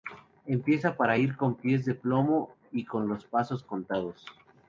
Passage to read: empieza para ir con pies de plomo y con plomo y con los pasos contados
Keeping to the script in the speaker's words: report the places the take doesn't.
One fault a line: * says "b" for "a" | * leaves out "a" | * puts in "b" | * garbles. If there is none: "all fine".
* leaves out "plomo y con"